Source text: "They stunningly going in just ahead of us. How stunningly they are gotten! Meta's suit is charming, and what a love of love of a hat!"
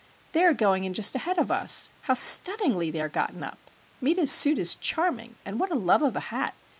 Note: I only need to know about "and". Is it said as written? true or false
true